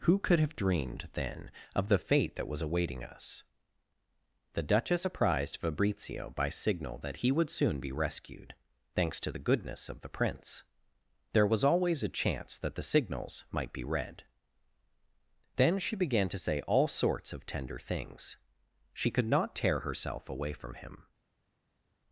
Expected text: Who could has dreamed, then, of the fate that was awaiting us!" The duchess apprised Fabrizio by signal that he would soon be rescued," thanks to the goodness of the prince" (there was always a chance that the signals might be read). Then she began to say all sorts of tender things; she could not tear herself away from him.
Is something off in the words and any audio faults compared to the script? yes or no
yes